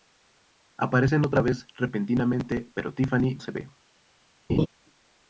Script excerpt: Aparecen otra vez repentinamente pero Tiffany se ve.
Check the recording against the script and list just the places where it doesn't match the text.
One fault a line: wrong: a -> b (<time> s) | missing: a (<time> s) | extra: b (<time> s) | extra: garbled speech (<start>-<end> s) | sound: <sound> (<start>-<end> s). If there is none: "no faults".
sound: laugh (4.5-4.7 s)